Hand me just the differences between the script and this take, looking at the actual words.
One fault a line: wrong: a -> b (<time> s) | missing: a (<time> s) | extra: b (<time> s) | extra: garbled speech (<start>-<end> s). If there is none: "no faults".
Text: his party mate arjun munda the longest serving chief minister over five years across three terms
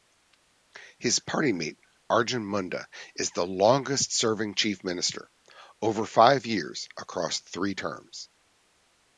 extra: is (3.1 s)